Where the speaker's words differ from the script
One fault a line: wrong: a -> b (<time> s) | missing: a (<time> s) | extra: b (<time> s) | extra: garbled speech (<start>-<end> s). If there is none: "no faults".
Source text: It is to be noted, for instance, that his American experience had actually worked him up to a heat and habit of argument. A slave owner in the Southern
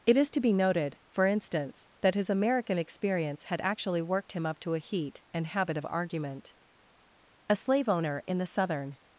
no faults